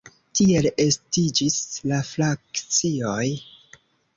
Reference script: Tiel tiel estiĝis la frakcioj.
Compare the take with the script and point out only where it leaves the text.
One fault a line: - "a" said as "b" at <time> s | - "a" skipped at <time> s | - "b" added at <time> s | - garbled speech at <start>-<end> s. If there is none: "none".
- "tiel" skipped at 0.7 s